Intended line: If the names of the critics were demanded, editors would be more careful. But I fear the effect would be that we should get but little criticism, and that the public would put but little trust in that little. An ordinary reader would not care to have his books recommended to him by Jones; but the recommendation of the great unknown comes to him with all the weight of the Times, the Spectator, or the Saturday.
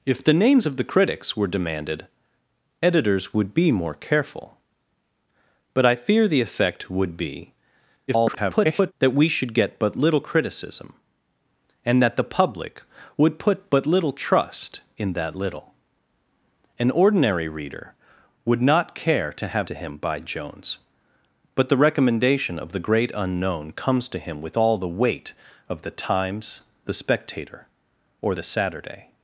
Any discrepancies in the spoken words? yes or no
yes